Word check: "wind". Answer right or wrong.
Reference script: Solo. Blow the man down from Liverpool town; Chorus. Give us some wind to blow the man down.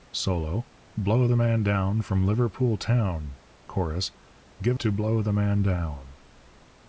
wrong